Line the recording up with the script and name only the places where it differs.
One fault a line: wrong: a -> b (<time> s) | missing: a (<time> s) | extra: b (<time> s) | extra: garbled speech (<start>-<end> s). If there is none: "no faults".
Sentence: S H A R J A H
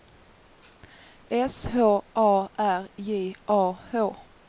no faults